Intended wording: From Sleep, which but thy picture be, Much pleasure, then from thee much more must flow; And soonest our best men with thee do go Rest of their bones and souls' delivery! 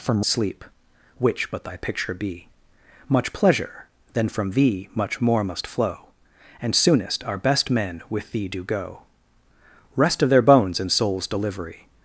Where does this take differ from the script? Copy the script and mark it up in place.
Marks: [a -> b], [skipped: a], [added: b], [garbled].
From Sleep, which but thy picture be, Much pleasure, then from thee much more must flow; And soonest our best men with thee do go Rest of their bones and souls' delivery!